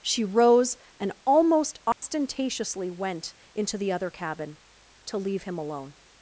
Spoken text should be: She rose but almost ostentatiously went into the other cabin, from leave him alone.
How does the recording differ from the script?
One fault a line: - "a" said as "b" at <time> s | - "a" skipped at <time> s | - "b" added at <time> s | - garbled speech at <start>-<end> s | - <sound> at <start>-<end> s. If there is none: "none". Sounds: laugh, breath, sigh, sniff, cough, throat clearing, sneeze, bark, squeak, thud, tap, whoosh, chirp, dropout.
- "but" said as "and" at 1.0 s
- dropout at 1.9-2.0 s
- "from" said as "to" at 5.1 s